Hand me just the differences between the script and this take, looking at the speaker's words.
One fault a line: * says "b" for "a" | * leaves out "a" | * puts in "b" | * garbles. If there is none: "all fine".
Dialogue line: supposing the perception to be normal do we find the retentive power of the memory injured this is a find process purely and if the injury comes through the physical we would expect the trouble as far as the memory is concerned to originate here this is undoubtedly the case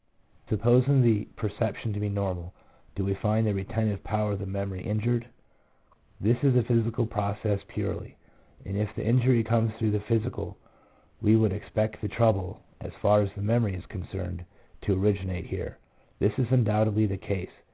* says "physical" for "find"